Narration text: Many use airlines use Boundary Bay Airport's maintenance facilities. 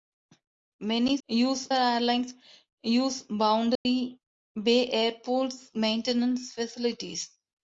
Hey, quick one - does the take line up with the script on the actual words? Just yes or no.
yes